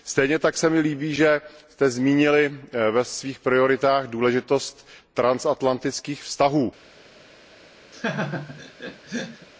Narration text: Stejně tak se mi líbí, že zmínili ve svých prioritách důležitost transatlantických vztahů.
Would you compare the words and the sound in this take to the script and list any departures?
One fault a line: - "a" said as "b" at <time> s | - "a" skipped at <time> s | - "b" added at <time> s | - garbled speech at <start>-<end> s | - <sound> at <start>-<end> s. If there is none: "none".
- "jste" added at 1.7 s
- laugh at 7.9-9.5 s